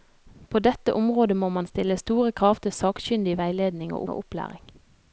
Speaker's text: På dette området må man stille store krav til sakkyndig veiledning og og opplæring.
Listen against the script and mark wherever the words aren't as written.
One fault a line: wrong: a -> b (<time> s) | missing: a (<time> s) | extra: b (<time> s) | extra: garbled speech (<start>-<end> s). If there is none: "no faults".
no faults